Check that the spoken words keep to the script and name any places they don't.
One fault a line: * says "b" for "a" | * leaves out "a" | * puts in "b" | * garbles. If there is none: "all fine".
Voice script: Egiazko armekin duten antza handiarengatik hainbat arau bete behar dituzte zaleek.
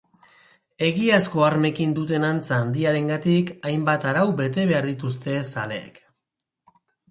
all fine